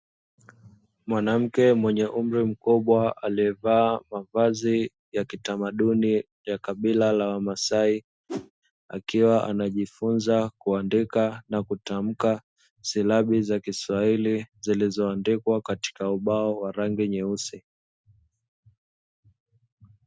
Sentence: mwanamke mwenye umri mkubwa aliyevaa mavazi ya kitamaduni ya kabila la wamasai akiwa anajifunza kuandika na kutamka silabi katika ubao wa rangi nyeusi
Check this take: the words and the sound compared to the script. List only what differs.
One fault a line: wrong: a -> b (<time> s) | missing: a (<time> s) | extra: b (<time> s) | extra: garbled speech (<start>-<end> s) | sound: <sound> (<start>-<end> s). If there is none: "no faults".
sound: whoosh (8.3-8.5 s)
extra: za kiswahili zilizoandikwa (13.4 s)